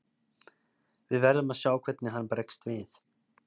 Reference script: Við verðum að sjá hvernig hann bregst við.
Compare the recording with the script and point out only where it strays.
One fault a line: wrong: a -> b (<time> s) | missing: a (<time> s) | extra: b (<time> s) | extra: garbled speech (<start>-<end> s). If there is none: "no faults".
no faults